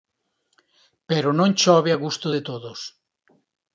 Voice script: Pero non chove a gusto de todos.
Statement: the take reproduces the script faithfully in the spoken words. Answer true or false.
true